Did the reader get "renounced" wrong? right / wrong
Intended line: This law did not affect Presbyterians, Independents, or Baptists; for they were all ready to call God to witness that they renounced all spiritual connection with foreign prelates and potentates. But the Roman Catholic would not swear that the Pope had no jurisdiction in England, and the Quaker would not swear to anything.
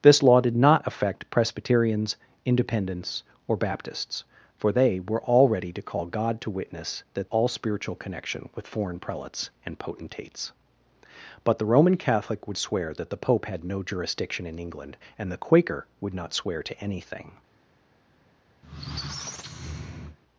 wrong